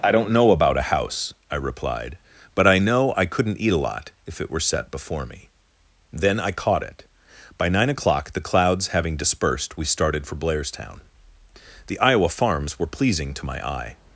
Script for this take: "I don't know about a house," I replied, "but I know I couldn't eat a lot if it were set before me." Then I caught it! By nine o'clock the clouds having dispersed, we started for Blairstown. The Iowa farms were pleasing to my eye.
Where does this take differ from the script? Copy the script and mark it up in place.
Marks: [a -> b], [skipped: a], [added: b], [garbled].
"I don't know about a house," I replied, "but I know I couldn't eat a lot if it were set before me." Then I caught it! By nine o'clock the clouds having dispersed, we started for Blairstown. The Iowa farms were pleasing to my eye.